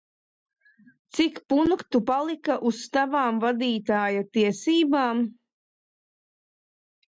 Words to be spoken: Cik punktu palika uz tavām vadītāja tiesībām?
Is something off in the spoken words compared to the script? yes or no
no